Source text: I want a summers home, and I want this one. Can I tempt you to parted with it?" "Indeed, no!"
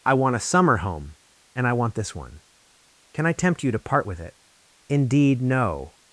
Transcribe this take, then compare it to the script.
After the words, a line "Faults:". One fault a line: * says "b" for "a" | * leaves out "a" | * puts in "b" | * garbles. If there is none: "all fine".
I want a summer home, and I want this one. Can I tempt you to part with it?" "Indeed, no!"
Faults:
* says "summer" for "summers"
* says "part" for "parted"